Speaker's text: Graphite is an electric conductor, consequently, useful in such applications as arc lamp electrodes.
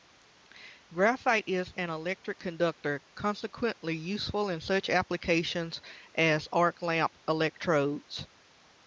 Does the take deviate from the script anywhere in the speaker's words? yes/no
no